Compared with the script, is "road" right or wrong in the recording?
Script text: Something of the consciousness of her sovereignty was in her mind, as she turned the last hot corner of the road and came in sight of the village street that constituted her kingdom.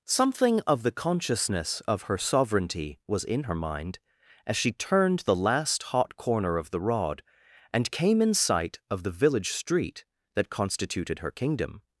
wrong